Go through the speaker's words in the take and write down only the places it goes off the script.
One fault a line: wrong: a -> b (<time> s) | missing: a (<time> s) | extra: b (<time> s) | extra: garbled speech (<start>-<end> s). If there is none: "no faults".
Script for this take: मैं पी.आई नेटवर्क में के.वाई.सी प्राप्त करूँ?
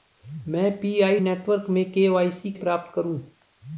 no faults